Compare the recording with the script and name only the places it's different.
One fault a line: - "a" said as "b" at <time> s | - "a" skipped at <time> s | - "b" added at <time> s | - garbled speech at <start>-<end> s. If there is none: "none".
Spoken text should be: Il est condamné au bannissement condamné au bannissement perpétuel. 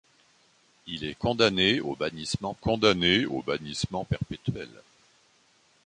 none